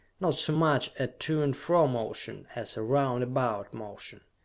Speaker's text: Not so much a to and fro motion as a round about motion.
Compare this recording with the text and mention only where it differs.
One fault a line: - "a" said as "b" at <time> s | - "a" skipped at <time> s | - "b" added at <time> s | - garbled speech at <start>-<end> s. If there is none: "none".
none